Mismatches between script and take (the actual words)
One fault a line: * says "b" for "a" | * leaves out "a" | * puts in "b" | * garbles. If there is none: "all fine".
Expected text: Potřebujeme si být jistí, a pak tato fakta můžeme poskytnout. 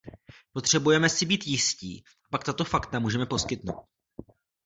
all fine